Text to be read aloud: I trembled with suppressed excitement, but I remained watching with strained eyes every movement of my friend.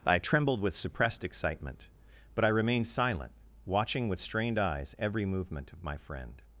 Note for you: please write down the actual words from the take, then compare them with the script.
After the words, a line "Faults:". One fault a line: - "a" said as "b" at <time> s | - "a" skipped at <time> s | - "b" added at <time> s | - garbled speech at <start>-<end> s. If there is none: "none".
I trembled with suppressed excitement, but I remained silent, watching with strained eyes every movement of my friend.
Faults:
- "silent" added at 2.9 s